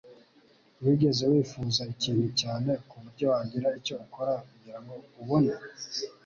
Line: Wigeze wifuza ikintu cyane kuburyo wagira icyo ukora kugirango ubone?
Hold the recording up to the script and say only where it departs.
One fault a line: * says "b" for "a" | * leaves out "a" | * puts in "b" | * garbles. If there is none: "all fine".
all fine